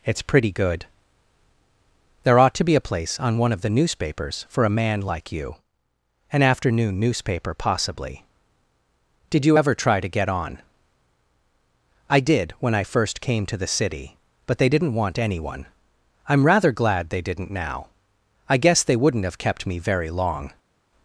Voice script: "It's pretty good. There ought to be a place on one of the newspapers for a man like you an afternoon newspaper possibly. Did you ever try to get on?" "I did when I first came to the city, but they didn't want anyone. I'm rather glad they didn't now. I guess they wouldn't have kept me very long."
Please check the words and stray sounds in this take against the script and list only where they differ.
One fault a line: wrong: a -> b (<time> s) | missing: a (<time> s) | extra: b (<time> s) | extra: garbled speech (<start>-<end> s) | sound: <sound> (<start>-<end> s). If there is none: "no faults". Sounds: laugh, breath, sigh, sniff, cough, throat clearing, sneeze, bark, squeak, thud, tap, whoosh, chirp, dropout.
no faults